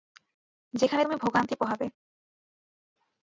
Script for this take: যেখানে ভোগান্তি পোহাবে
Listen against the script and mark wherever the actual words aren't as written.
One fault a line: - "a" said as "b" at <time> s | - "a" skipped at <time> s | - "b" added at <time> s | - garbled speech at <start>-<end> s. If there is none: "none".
- "তুমি" added at 1.0 s